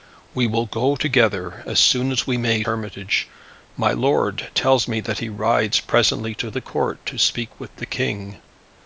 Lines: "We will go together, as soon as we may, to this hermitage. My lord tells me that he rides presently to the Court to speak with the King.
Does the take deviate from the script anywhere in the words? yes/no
yes